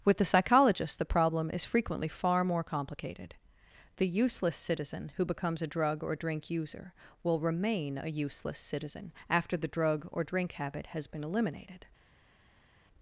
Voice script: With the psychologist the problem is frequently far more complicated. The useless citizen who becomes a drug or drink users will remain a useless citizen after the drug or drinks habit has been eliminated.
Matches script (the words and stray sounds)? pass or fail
fail